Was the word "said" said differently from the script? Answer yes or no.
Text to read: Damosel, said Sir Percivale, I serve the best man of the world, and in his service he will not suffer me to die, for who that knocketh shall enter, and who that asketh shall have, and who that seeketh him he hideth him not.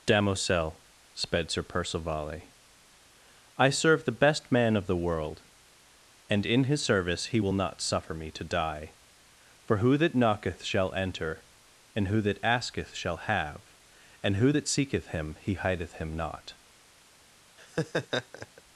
yes